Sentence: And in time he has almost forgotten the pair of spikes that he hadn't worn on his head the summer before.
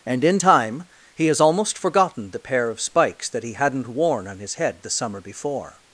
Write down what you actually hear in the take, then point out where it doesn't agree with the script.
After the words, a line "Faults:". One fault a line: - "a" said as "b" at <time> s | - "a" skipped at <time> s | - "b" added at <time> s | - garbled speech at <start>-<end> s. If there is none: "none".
And in time he has almost forgotten the pair of spikes that he hadn't worn on his head the summer before.
Faults:
none